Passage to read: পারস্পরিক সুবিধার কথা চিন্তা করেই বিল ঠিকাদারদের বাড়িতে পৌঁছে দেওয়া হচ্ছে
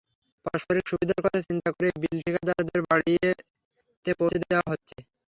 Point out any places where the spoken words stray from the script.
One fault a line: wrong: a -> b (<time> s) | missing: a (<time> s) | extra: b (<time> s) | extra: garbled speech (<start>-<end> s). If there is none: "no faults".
no faults